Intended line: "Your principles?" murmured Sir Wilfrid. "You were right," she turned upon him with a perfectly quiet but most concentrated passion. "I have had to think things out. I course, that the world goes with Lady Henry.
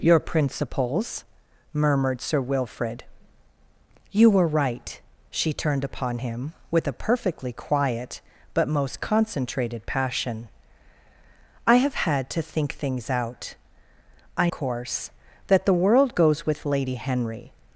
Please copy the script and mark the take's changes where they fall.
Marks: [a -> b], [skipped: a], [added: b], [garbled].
"Your principles?" murmured Sir Wilfrid. "You were right," she turned upon him with a perfectly quiet but most concentrated passion. "I have had to think things out. I course, that the world goes with Lady Henry.